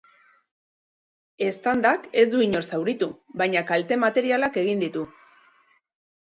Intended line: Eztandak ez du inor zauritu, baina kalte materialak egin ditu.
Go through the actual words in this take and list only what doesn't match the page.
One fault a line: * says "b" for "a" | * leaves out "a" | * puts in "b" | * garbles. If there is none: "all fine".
all fine